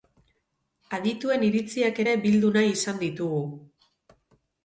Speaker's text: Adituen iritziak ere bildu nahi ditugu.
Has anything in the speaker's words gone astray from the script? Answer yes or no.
yes